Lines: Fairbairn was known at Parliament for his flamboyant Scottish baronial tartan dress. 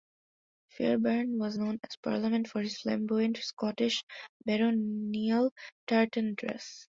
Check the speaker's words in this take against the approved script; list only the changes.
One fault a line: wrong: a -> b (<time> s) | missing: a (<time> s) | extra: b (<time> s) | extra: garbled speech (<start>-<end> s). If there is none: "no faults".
no faults